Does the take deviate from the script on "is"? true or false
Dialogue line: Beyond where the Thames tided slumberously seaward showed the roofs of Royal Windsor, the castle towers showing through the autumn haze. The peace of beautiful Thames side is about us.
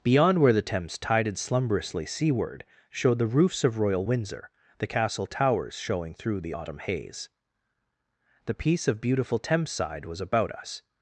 true